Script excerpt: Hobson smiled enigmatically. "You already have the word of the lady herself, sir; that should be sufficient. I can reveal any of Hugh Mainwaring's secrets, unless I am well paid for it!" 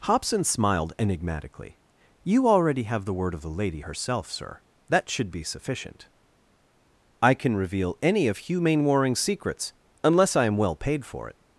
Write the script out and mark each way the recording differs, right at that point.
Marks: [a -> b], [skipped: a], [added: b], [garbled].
Hobson smiled enigmatically. "You already have the word of the lady herself, sir; that should be sufficient. I can reveal any of Hugh Mainwaring's secrets, unless I am well paid for it!"